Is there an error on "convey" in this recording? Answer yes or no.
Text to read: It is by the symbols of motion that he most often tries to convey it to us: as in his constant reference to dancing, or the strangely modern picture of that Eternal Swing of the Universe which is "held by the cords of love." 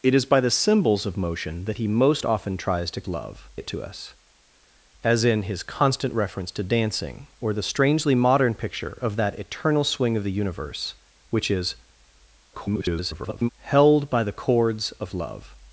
yes